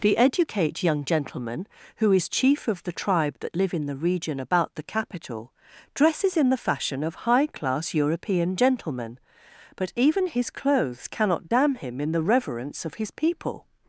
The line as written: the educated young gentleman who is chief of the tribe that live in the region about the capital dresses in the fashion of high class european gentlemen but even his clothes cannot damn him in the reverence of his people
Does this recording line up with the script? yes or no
no